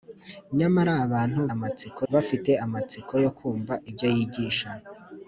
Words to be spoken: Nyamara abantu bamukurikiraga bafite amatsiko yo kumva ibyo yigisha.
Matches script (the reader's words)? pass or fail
fail